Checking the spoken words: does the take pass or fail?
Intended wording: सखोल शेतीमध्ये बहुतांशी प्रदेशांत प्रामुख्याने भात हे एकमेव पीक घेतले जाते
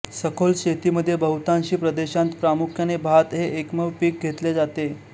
pass